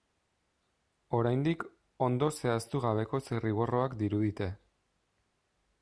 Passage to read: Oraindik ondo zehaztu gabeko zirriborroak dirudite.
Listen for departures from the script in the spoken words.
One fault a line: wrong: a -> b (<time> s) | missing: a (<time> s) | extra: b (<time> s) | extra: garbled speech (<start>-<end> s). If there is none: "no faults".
no faults